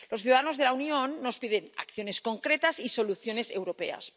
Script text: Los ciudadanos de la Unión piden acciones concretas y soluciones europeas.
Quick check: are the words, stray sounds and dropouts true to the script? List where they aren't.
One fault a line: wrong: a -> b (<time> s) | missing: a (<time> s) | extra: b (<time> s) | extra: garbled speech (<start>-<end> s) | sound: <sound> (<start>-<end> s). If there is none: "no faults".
extra: nos (1.2 s)